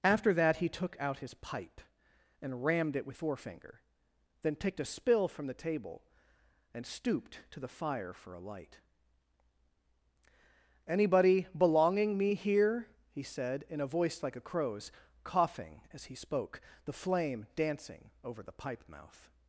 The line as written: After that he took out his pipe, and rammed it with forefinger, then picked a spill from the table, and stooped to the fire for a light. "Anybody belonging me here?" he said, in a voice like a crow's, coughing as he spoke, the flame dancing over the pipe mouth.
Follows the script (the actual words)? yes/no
yes